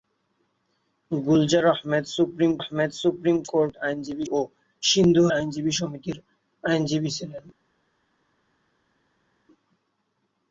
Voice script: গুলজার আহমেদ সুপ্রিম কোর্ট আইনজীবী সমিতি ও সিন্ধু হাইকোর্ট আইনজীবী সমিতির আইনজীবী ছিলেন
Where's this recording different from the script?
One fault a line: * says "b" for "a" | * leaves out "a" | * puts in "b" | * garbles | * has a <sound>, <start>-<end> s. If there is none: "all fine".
* puts in "আহমেদ সুপ্রিম"
* leaves out "সমিতি"
* leaves out "হাইকোর্ট"